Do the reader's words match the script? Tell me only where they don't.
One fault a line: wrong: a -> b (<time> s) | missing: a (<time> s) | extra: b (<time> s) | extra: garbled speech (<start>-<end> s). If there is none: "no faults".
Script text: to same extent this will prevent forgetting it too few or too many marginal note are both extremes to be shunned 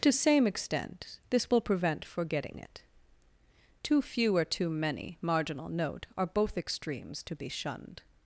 no faults